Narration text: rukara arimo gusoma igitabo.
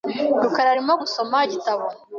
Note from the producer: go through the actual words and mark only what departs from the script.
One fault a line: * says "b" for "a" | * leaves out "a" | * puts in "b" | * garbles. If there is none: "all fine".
all fine